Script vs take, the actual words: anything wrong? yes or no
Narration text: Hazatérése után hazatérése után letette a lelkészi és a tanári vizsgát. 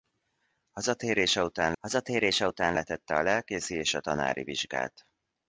no